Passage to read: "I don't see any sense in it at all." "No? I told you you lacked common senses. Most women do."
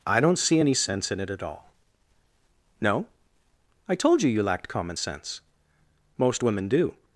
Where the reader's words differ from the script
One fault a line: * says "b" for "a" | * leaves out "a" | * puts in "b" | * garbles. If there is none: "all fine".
* says "sense" for "senses"